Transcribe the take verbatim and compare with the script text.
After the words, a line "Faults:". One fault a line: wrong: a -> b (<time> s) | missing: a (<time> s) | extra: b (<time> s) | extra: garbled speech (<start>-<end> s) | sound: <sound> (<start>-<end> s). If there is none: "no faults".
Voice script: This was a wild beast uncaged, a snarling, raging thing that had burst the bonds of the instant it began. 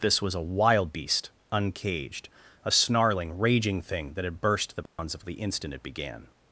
This was a wild beast uncaged, a snarling, raging thing that had burst the bonds of the instant it began.
Faults:
sound: dropout (4.9-5.0 s)